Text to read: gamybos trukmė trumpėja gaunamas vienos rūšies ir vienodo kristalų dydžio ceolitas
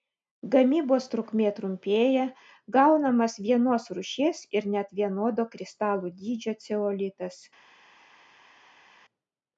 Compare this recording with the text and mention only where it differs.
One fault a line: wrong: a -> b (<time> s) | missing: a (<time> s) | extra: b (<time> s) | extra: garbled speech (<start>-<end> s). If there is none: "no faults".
extra: net (4.8 s)